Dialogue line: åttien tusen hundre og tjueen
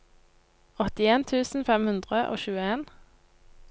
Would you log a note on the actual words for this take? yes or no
yes